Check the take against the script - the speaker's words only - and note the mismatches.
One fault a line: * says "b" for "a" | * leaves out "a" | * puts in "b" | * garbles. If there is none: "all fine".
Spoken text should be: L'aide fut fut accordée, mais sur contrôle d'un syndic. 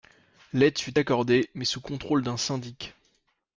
* leaves out "fut"
* says "sous" for "sur"